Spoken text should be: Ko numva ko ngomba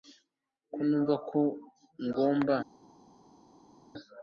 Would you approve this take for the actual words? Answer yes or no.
yes